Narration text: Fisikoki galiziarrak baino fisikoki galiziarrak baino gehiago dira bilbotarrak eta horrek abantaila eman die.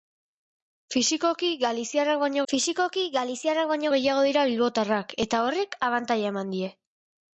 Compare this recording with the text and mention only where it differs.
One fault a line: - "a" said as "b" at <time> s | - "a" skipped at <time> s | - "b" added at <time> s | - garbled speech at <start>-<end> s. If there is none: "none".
none